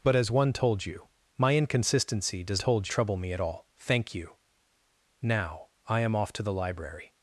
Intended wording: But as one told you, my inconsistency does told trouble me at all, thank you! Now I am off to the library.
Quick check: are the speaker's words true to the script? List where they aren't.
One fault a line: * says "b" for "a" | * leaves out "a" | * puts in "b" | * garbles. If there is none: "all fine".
all fine